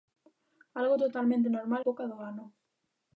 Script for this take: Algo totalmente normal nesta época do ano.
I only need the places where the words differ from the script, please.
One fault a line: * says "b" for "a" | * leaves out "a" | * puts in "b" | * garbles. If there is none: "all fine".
* leaves out "nesta"